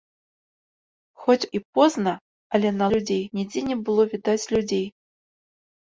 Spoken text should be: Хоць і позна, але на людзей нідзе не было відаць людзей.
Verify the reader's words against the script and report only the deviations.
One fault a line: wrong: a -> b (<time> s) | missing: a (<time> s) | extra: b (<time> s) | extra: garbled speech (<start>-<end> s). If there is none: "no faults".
no faults